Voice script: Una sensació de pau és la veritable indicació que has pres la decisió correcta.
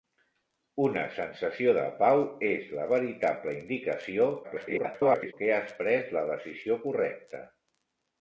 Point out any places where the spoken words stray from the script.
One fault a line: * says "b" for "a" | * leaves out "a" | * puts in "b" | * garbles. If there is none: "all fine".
* garbles